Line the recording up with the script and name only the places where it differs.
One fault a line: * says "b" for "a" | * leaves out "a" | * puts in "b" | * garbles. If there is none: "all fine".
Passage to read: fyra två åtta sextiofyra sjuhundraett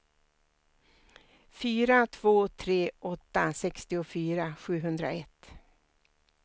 * puts in "tre"